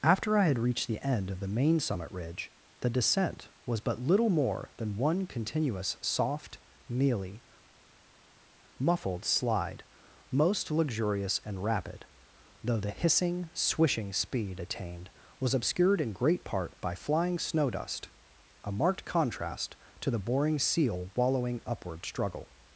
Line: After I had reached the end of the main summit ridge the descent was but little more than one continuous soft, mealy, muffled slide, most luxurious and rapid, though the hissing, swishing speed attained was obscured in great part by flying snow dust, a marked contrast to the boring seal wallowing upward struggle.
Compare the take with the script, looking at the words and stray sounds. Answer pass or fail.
pass